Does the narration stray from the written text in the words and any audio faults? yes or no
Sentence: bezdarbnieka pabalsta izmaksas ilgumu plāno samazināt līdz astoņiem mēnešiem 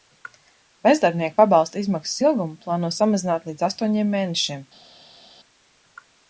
no